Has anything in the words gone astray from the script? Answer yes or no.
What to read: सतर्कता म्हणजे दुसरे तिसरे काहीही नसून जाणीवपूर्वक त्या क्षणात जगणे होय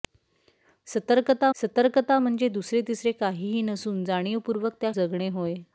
yes